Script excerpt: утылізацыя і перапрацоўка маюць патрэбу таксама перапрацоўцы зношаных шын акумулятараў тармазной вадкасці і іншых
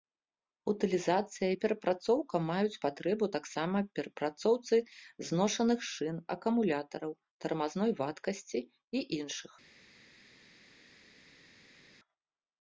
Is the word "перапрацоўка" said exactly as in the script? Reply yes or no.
yes